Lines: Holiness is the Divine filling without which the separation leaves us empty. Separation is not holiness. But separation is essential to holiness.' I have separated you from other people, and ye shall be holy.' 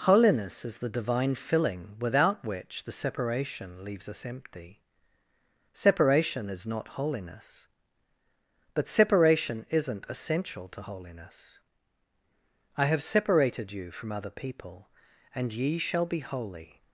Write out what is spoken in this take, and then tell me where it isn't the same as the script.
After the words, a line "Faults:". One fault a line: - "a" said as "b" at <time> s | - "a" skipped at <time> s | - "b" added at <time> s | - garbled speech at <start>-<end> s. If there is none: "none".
Holiness is the Divine filling without which the separation leaves us empty. Separation is not holiness. But separation isn't essential to holiness.' I have separated you from other people, and ye shall be holy.'
Faults:
- "is" said as "isn't" at 9.7 s